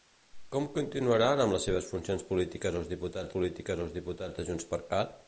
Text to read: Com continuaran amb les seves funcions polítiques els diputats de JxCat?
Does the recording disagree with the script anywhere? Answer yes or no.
yes